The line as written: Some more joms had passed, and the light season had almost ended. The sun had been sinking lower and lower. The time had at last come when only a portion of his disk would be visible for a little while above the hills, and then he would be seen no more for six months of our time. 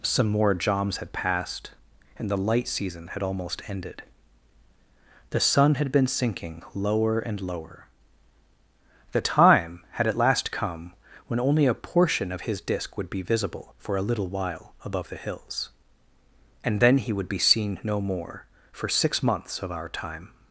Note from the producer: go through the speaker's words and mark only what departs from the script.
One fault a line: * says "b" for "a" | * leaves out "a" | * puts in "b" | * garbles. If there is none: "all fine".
all fine